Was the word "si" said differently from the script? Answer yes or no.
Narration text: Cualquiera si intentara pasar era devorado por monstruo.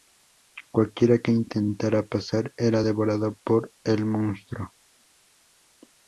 yes